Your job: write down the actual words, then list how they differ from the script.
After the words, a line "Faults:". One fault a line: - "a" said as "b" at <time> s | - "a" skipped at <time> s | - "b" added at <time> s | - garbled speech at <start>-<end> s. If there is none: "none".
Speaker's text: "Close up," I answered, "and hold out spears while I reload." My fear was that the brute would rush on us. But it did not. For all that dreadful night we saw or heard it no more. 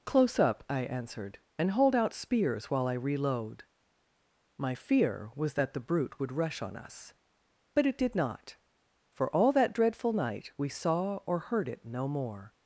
"Close up," I answered, "and hold out spears while I reload." My fear was that the brute would rush on us. But it did not. For all that dreadful night we saw or heard it no more.
Faults:
none